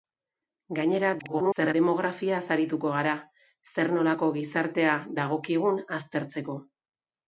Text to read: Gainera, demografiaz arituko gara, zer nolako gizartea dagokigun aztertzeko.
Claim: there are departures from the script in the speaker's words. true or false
true